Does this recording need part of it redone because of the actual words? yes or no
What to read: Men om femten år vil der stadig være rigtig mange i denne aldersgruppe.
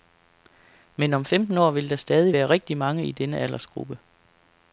no